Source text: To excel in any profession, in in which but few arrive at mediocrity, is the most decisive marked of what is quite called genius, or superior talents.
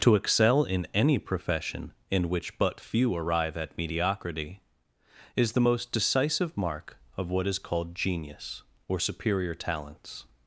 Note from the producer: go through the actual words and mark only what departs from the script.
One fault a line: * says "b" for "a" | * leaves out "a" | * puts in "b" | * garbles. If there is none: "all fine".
* leaves out "in"
* says "mark" for "marked"
* leaves out "quite"